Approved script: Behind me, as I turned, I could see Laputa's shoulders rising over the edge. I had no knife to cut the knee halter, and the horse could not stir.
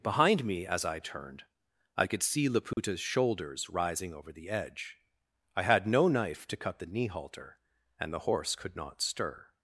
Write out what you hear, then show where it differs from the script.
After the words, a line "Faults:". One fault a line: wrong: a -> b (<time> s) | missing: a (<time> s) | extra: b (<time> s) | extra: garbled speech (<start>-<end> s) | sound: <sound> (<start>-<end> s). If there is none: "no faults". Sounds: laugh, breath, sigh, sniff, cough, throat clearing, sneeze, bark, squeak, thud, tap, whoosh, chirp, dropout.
Behind me, as I turned, I could see Laputa's shoulders rising over the edge. I had no knife to cut the knee halter, and the horse could not stir.
Faults:
sound: dropout (2.7-2.8 s)